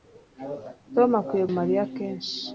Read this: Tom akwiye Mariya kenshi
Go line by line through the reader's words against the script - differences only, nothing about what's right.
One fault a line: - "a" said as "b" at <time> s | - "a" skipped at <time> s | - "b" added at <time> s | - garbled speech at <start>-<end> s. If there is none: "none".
none